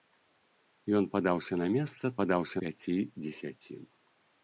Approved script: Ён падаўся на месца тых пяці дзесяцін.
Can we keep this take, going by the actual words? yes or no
no